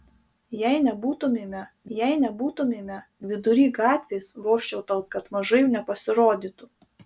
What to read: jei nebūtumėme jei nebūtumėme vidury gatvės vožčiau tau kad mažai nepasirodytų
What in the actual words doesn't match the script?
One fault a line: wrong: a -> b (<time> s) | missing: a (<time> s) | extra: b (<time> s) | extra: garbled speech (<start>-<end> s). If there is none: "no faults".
no faults